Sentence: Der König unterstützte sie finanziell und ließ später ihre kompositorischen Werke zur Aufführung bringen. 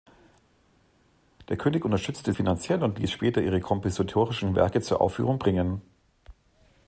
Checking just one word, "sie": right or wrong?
wrong